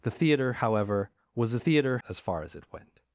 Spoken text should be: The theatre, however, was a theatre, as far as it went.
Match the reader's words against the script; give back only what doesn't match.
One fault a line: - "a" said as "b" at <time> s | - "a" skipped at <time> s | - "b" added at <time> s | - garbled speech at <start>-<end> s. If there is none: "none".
none